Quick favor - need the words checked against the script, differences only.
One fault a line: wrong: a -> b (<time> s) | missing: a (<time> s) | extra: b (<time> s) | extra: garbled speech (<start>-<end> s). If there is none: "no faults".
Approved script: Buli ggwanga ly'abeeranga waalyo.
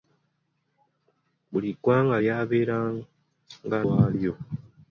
no faults